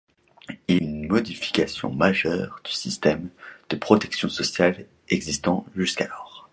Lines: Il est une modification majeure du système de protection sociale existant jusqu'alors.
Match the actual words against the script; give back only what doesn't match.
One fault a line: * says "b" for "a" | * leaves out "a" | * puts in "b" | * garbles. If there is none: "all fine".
* leaves out "est"